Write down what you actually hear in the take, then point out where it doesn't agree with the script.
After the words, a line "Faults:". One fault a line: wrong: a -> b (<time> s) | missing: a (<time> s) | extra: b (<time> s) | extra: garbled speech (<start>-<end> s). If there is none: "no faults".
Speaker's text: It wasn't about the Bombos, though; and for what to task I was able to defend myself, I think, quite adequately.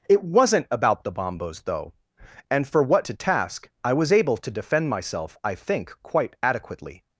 It wasn't about the Bombos, though; and for what to task I was able to defend myself, I think, quite adequately.
Faults:
no faults